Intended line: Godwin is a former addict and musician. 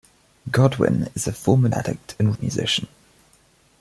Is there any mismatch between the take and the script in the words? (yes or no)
no